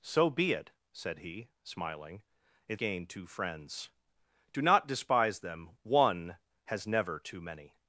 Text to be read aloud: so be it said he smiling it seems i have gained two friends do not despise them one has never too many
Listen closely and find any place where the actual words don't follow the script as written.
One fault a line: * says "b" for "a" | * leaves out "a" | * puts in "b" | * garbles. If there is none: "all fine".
* leaves out "seems i have"